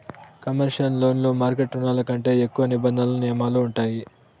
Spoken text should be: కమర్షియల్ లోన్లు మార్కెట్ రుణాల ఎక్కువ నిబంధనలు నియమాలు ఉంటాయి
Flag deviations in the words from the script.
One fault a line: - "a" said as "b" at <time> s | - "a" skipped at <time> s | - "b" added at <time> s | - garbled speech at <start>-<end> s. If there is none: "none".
- "కంటే" added at 2.1 s